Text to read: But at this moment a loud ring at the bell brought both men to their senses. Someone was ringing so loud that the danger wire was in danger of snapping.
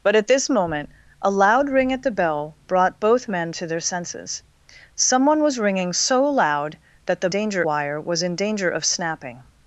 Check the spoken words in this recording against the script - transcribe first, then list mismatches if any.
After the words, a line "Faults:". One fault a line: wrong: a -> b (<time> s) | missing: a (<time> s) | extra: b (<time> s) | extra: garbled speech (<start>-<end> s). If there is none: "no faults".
But at this moment a loud ring at the bell brought both men to their senses. Someone was ringing so loud that the danger wire was in danger of snapping.
Faults:
no faults